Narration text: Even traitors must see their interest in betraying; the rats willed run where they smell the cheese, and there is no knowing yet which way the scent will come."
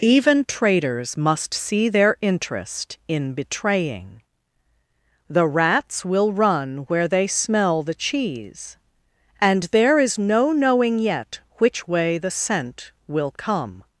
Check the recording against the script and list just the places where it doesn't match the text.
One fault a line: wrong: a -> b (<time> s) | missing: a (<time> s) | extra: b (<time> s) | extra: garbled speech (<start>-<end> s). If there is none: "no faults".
wrong: willed -> will (6.0 s)